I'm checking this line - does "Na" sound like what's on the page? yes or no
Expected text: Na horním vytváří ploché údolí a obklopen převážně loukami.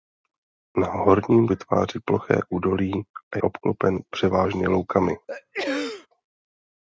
yes